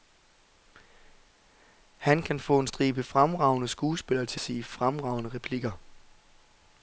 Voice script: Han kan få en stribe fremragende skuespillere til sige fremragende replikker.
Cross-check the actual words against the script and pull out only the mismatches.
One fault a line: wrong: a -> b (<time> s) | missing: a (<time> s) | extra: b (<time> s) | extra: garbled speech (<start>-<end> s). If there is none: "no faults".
no faults